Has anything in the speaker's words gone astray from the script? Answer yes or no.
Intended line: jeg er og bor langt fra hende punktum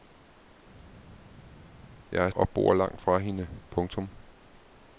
no